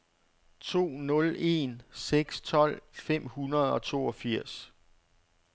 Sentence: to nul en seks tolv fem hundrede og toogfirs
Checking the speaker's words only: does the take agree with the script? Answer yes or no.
yes